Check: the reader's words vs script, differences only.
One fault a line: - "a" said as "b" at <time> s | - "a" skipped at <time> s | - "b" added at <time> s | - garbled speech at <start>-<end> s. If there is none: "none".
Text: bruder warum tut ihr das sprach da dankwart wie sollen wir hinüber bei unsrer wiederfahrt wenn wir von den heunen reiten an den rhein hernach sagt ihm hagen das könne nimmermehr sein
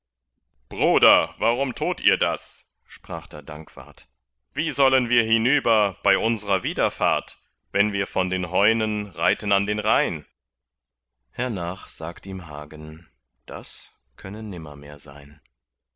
none